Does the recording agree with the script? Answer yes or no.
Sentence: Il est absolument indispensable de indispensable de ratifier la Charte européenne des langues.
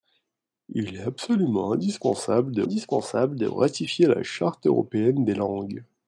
yes